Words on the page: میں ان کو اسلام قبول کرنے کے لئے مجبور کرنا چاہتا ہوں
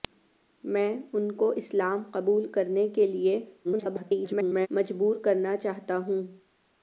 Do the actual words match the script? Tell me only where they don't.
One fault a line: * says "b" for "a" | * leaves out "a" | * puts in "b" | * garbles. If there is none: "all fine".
* garbles